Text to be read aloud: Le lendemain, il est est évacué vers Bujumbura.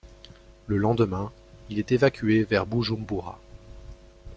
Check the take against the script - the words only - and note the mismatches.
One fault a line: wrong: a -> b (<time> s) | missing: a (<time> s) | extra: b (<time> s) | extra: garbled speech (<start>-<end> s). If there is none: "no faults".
missing: est (1.9 s)